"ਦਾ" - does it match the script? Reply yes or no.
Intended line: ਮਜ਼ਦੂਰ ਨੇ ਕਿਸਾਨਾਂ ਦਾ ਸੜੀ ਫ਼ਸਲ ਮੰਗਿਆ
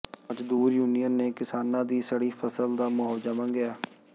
no